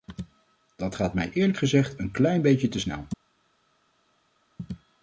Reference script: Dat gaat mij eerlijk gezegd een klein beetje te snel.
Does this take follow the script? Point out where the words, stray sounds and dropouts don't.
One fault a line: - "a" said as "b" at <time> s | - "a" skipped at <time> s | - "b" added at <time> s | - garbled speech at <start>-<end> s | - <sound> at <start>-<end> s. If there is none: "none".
none